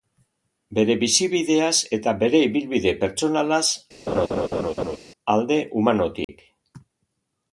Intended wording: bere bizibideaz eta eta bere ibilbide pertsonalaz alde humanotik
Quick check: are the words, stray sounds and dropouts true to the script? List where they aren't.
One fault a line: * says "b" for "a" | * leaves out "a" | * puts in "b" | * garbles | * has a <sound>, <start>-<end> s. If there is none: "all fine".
* leaves out "eta"
* has a laugh, 4.1-5.0 s
* has a dropout, 6.2-6.3 s